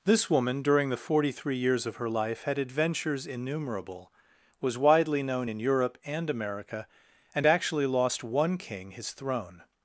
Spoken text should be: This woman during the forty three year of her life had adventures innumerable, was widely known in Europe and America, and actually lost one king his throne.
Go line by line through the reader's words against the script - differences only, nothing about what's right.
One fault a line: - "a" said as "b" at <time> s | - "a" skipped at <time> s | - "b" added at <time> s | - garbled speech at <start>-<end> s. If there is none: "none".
- "year" said as "years" at 1.6 s